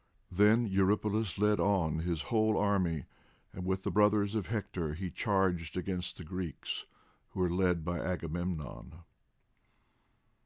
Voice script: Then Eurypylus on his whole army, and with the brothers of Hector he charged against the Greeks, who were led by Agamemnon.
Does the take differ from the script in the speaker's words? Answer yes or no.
yes